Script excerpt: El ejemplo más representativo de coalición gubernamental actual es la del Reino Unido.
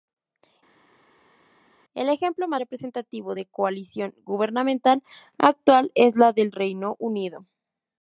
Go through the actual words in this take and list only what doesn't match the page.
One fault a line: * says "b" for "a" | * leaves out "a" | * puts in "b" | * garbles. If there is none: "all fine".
all fine